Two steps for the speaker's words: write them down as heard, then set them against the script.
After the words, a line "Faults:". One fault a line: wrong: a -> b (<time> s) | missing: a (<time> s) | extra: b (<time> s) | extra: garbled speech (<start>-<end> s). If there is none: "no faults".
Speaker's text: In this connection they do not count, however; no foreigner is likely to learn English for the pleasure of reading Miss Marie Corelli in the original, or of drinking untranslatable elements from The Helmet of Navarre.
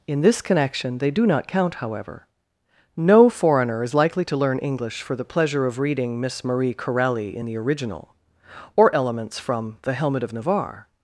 In this connection they do not count, however; no foreigner is likely to learn English for the pleasure of reading Miss Marie Corelli in the original, or elements from The Helmet of Navarre.
Faults:
missing: of drinking untranslatable (9.0 s)